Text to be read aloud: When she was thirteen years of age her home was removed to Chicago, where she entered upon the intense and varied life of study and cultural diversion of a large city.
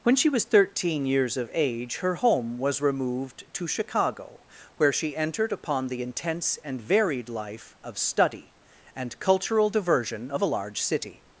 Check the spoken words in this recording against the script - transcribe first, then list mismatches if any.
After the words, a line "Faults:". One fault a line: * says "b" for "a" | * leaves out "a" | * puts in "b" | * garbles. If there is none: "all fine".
When she was thirteen years of age her home was removed to Chicago, where she entered upon the intense and varied life of study and cultural diversion of a large city.
Faults:
all fine